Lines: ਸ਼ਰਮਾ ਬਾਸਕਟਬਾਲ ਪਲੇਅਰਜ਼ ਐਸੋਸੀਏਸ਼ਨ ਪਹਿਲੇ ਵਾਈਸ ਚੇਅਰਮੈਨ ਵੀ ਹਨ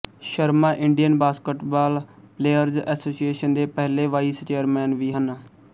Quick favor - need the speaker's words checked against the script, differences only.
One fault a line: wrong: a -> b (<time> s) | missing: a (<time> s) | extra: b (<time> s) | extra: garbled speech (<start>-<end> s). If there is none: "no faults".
extra: ਇੰਡੀਅਨ (0.8 s)
extra: ਦੇ (3.5 s)